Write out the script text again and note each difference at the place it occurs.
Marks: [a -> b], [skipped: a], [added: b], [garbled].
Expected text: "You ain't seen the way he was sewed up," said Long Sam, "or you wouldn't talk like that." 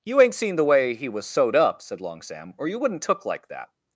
"You ain't seen the way he was sewed up," said Long Sam, "or you wouldn't [talk -> took] like that."